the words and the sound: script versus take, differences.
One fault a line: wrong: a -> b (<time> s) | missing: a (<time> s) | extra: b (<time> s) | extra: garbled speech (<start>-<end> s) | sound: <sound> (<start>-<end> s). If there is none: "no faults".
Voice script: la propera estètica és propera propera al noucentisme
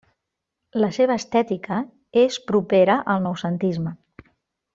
wrong: propera -> seva (0.9 s)
missing: propera (3.0 s)